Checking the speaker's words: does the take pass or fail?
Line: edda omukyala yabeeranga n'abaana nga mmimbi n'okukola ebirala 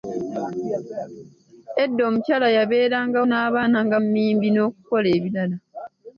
pass